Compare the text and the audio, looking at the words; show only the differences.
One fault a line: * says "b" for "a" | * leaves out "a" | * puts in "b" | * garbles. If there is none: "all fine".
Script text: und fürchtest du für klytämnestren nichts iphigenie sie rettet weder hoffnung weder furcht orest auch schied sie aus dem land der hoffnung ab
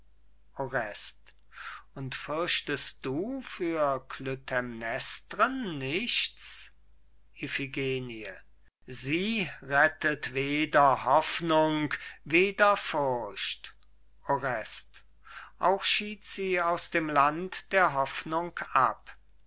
all fine